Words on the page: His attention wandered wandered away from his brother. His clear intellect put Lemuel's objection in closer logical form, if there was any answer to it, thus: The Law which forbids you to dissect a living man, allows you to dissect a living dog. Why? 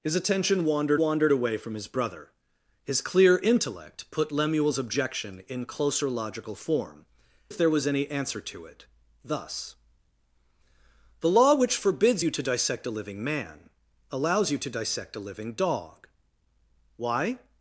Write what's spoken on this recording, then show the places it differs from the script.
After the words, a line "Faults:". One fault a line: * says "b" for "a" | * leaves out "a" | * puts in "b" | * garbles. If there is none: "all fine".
His attention wandered wandered away from his brother. His clear intellect put Lemuel's objection in closer logical form, if there was any answer to it, thus: The Law which forbids you to dissect a living man, allows you to dissect a living dog. Why?
Faults:
all fine